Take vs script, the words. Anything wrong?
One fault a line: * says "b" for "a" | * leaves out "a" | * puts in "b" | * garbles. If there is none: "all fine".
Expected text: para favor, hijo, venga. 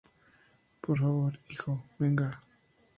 * says "por" for "para"